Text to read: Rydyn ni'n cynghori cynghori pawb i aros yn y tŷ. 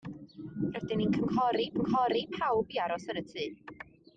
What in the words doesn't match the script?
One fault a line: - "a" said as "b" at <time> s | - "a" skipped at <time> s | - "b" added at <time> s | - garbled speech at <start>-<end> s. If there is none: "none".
none